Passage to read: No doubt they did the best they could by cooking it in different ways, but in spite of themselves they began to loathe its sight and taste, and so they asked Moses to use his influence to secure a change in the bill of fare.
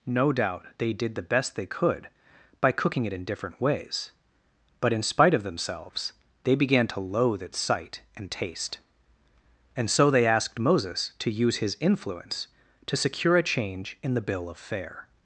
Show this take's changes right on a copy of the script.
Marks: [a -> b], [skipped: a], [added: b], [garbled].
No doubt they did the best they could by cooking it in different ways, but in spite of themselves they began to loathe its sight and taste, and so they asked Moses to use his influence to secure a change in the bill of fare.